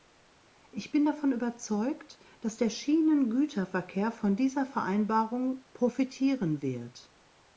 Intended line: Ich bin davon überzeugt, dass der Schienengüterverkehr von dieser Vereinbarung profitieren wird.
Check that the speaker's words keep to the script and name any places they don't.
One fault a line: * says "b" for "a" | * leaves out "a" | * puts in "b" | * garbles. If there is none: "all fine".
all fine